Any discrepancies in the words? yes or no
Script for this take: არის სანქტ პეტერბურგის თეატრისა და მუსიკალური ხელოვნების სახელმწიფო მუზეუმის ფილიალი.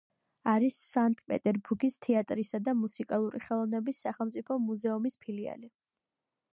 no